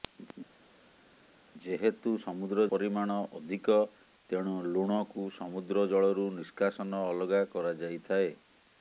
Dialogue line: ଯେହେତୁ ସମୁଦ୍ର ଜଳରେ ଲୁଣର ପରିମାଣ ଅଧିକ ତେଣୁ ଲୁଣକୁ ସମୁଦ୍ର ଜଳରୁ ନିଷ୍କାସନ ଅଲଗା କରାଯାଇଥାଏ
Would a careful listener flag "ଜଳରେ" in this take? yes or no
yes